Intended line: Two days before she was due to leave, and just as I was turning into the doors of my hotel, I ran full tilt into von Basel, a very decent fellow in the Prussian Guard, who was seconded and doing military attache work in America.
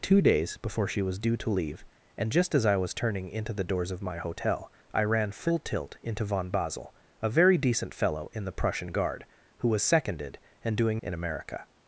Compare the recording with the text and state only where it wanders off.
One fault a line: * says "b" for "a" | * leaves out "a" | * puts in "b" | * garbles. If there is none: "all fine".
* leaves out "military attache work"